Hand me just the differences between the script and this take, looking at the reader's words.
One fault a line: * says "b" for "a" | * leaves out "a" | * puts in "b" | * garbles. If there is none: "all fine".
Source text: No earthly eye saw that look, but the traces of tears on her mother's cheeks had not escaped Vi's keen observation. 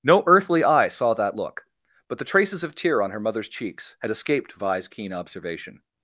* says "tear" for "tears"
* leaves out "not"